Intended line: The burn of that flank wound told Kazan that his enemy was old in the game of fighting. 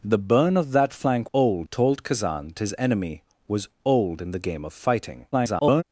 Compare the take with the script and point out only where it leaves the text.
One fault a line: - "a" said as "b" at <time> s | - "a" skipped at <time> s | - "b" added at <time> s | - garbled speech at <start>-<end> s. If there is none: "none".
- "wound" said as "old" at 1.3 s
- "that" skipped at 2.6 s
- garbled speech at 5.3-5.8 s